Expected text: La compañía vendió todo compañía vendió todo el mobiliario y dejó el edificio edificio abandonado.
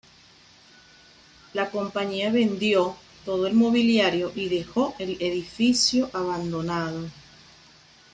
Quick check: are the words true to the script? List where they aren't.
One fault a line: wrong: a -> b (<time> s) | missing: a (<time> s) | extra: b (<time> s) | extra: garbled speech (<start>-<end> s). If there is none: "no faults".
missing: compañía vendió todo (3.5 s)
missing: edificio (6.1 s)